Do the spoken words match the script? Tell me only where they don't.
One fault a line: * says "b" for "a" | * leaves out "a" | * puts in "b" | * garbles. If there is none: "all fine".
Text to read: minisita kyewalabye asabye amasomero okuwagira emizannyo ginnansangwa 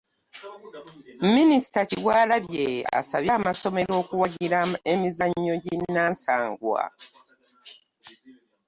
all fine